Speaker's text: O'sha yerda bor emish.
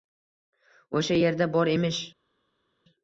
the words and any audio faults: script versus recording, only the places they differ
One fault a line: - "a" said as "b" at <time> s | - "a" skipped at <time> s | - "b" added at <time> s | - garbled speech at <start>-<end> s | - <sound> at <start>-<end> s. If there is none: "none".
none